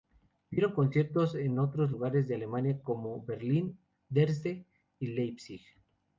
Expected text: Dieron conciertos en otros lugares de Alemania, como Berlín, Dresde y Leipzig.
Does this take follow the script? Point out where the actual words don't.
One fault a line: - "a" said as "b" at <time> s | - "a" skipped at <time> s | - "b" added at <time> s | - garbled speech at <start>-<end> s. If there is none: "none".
none